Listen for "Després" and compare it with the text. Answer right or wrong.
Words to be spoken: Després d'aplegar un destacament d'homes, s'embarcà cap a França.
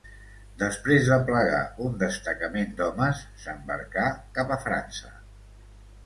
right